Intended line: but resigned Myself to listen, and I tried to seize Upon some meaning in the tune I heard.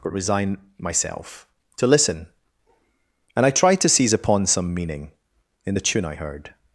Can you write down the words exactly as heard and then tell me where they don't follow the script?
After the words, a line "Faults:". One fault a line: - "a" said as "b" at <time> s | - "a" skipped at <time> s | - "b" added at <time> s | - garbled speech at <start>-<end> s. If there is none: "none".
but resign Myself to listen, and I tried to seize Upon some meaning in the tune I heard.
Faults:
- "resigned" said as "resign" at 0.1 s